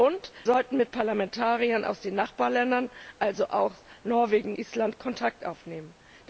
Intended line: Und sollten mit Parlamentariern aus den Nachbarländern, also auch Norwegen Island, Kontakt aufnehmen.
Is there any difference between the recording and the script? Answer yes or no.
no